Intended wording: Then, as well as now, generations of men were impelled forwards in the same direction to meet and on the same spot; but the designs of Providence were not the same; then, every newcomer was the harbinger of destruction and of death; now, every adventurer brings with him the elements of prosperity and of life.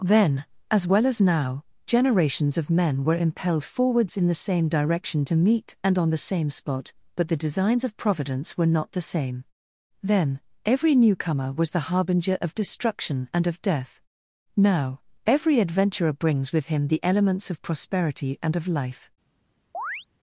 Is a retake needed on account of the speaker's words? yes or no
no